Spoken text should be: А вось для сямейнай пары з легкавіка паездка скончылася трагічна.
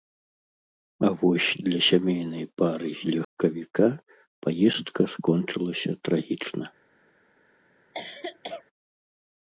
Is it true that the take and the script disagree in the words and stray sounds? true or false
true